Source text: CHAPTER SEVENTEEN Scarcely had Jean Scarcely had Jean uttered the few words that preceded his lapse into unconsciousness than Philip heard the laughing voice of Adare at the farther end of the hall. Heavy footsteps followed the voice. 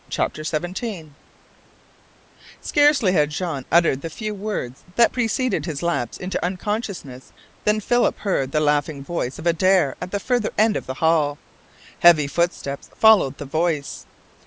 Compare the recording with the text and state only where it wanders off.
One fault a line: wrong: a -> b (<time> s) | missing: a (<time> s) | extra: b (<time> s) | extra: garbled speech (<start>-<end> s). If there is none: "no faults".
missing: Scarcely had Jean (3.6 s)